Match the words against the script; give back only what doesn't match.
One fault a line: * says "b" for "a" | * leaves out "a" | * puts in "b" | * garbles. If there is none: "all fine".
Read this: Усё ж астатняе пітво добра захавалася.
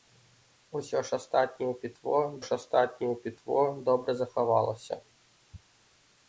* puts in "ж астатняе пітво"